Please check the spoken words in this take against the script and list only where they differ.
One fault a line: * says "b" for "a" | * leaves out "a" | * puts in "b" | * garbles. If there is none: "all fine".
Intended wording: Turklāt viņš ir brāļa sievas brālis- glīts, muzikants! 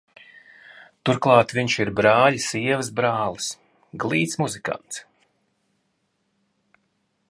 all fine